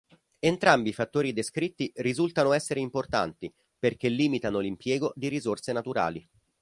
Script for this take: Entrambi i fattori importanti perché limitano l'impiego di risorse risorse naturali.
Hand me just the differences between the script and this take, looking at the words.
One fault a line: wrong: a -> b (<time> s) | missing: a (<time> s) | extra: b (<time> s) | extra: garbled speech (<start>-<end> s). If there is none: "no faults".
extra: descritti risultano essere (1.3 s)
missing: risorse (5.7 s)